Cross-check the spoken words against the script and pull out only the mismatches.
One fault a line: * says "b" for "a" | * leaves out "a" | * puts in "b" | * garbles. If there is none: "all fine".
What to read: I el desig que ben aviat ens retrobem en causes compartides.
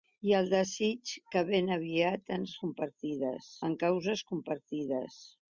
* says "compartides" for "retrobem"